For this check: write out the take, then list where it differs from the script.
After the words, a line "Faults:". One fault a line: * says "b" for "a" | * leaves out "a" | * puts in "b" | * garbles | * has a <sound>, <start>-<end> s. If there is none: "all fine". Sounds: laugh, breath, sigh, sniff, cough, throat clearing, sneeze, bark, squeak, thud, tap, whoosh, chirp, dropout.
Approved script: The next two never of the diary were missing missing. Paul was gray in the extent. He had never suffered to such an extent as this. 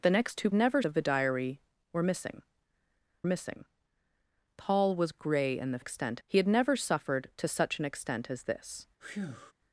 The next two never of the diary were missing missing. Paul was gray in the extent. He had never suffered to such an extent as this.
Faults:
* has a breath, 9.0-9.5 s